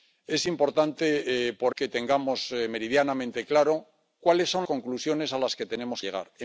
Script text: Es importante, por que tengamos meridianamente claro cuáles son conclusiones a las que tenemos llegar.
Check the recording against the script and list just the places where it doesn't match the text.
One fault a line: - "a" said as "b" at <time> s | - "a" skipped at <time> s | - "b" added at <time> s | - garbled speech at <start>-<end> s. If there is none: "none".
none